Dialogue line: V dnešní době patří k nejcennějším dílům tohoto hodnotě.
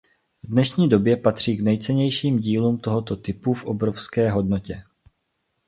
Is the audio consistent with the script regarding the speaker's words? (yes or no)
no